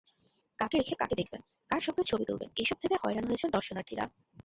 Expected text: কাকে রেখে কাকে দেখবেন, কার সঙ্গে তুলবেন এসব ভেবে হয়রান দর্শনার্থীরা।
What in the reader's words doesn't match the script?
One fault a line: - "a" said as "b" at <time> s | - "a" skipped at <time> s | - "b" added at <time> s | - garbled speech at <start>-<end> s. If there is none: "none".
- "ছবি" added at 2.0 s
- "হয়েছেন" added at 3.3 s